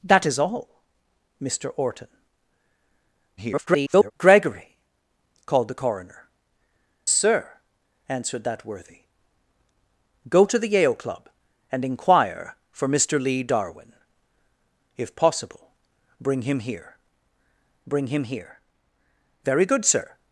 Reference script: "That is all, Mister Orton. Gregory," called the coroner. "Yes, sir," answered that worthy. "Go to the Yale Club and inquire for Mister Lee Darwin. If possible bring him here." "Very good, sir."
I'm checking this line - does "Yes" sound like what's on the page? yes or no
no